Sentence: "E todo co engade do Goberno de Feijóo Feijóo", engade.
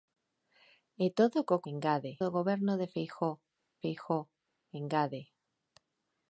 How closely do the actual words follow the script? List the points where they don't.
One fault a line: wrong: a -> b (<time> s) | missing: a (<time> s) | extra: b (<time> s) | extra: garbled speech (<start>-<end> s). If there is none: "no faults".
no faults